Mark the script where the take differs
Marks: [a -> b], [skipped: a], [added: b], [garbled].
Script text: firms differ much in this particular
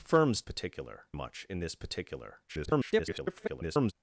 firms [differ -> particular] much in this particular [garbled]